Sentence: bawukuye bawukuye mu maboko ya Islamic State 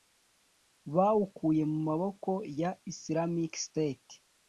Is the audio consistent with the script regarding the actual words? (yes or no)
no